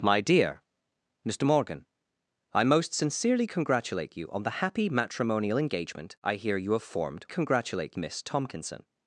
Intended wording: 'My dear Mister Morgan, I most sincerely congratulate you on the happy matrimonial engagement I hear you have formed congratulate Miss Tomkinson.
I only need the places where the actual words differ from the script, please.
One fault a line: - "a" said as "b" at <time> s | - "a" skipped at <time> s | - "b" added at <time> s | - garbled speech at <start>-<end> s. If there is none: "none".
none